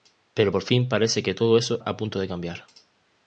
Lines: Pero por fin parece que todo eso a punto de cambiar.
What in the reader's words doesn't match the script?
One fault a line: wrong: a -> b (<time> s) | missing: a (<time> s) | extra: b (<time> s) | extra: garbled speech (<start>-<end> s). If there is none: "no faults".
no faults